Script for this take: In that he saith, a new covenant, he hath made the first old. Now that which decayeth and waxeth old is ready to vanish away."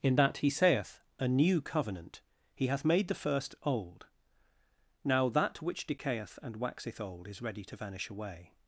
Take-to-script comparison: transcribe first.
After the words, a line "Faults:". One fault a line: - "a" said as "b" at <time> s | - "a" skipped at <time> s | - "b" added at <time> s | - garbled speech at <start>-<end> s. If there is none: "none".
In that he saith, a new covenant, he hath made the first old. Now that which decayeth and waxeth old is ready to vanish away."
Faults:
none